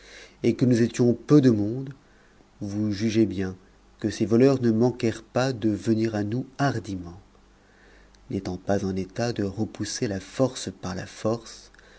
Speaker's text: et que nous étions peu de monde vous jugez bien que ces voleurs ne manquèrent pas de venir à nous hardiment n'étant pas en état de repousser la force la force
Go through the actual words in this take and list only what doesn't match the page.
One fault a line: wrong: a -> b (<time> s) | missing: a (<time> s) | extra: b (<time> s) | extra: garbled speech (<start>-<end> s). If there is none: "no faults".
extra: par (10.8 s)